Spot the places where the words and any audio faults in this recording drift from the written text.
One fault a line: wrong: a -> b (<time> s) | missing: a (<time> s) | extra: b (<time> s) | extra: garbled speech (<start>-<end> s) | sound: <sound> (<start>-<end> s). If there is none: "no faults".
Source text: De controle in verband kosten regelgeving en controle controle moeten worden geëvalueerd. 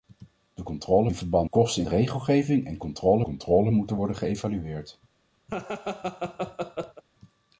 sound: laugh (5.5-7.0 s)